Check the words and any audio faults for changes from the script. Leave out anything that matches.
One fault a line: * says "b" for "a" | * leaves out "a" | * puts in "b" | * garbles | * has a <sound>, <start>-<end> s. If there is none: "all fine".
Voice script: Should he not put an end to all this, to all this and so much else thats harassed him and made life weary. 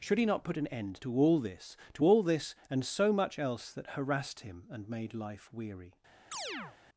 * says "that" for "thats"
* has a chirp, 6.3-6.8 s